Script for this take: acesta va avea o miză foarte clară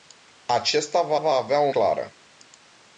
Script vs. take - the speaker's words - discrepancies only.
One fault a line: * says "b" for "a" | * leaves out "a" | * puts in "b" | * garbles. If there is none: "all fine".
* puts in "va"
* leaves out "miză foarte"